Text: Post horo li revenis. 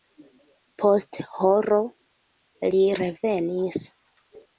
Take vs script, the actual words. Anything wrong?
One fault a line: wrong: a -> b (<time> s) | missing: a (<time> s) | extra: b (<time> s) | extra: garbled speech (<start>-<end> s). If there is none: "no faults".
no faults